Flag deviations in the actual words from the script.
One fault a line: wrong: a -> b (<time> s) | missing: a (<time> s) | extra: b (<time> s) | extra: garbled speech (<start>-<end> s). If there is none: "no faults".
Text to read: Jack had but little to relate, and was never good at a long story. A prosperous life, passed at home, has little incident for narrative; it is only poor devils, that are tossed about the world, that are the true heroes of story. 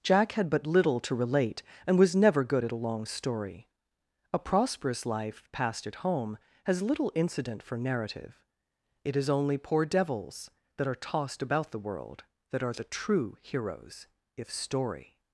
wrong: of -> if (14.4 s)